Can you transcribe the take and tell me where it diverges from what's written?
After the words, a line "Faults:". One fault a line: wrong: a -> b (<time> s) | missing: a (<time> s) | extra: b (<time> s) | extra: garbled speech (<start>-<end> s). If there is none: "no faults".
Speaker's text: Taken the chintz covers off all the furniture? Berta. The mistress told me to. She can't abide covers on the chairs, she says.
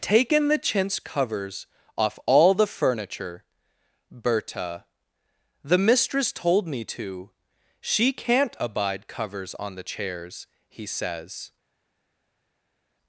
Taken the chintz covers off all the furniture? Berta. The mistress told me to. She can't abide covers on the chairs, he says.
Faults:
wrong: she -> he (10.7 s)